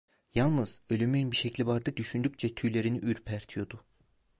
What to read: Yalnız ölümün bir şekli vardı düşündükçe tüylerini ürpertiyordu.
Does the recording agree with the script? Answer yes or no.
yes